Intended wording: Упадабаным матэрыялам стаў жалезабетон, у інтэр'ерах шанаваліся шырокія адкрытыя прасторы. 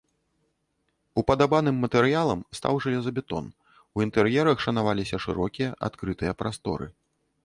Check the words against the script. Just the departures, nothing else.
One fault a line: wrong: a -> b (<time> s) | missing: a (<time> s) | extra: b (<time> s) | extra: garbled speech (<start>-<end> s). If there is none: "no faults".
no faults